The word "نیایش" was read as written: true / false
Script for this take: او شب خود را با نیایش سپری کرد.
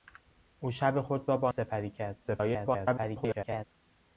false